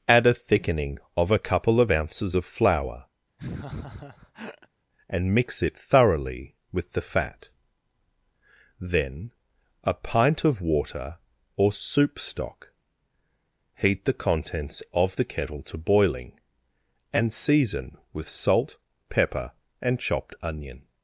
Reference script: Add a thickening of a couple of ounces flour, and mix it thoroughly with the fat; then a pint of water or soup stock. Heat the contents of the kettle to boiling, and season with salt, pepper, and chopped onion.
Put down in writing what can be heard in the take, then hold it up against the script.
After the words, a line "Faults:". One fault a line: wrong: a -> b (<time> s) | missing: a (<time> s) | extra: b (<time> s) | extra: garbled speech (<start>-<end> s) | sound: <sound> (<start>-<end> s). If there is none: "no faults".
Add a thickening of a couple of ounces of flour, and mix it thoroughly with the fat; then a pint of water or soup stock. Heat the contents of the kettle to boiling, and season with salt, pepper, and chopped onion.
Faults:
extra: of (2.3 s)
sound: laugh (3.4-4.7 s)